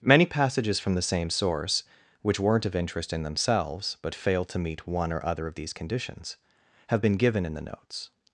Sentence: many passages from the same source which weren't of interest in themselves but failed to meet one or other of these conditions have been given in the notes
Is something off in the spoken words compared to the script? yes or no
no